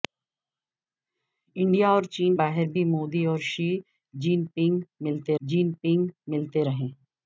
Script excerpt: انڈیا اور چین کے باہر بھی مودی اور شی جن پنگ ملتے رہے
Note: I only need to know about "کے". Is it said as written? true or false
false